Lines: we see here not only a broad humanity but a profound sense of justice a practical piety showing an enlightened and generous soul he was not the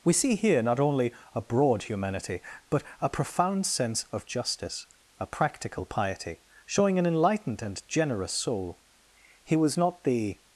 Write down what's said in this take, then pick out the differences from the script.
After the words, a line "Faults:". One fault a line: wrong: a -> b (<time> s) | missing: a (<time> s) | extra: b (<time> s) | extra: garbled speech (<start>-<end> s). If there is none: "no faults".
we see here not only a broad humanity but a profound sense of justice a practical piety showing an enlightened and generous soul he was not the
Faults:
no faults